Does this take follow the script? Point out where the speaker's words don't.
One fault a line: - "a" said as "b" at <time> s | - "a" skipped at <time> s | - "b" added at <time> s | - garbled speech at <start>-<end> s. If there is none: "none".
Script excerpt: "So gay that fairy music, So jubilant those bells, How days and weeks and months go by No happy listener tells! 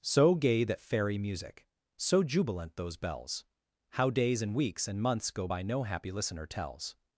none